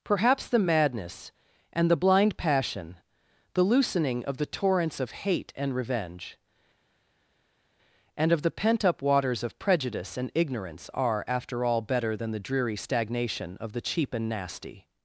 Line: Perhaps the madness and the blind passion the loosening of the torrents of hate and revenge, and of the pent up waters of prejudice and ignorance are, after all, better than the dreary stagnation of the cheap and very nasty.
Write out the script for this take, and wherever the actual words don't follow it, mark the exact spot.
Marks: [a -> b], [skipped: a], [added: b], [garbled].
Perhaps the madness and the blind passion the loosening of the torrents of hate and revenge, and of the pent up waters of prejudice and ignorance are, after all, better than the dreary stagnation of the cheap and [skipped: very] nasty.